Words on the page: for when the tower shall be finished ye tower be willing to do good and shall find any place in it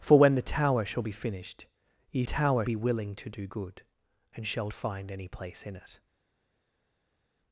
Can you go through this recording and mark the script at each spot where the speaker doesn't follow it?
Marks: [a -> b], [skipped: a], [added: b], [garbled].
for when the tower shall be finished ye tower be willing to do good and shall find any place in it